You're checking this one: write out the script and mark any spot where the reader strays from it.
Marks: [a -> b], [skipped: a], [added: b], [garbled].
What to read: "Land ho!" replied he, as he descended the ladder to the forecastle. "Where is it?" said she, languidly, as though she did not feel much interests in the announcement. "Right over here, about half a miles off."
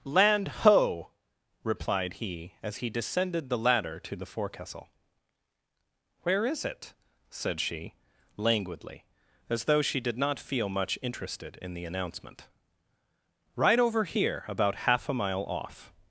"Land ho!" replied he, as he descended the ladder to the forecastle. "Where is it?" said she, languidly, as though she did not feel much [interests -> interested] in the announcement. "Right over here, about half a [miles -> mile] off."